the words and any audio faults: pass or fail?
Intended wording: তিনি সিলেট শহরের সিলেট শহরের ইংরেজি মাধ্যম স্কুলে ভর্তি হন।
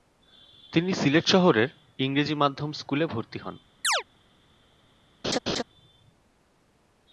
fail